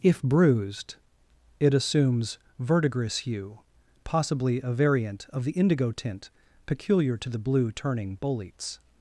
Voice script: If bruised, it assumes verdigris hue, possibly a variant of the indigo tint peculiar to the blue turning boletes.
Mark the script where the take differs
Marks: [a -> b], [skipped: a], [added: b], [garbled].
If bruised, it assumes verdigris hue, possibly a variant of the indigo tint peculiar to the blue turning boletes.